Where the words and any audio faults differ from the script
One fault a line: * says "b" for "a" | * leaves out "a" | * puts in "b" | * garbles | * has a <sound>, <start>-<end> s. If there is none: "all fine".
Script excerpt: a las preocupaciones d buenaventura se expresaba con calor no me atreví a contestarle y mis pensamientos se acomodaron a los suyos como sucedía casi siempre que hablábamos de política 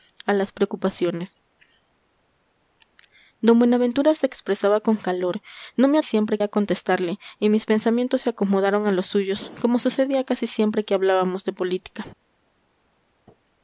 * says "siempre" for "atreví"